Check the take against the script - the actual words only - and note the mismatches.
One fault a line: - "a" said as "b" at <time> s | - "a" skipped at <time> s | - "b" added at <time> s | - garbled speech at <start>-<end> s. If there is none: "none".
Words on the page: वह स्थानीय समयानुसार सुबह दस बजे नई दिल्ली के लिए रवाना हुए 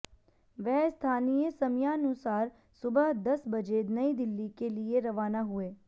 none